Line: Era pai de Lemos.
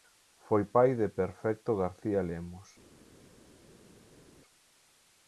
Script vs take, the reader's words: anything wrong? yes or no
yes